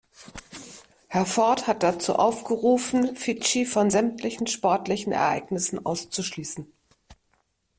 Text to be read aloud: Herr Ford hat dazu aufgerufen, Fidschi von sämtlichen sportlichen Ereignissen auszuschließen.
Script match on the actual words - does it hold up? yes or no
yes